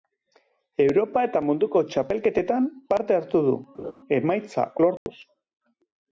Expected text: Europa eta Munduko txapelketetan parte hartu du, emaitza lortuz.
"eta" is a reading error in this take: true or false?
false